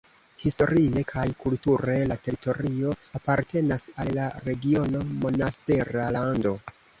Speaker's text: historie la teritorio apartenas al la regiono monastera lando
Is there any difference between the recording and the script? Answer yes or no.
yes